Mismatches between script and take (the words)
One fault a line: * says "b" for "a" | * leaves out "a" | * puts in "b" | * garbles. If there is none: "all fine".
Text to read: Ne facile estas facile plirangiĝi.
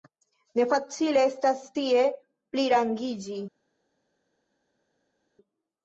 * says "tie" for "facile"